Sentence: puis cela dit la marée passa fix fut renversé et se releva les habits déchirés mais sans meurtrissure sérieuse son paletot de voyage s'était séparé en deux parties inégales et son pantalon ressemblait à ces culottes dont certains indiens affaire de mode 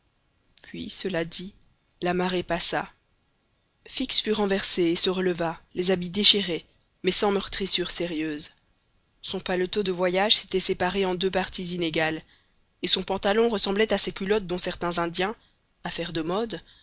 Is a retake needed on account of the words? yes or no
no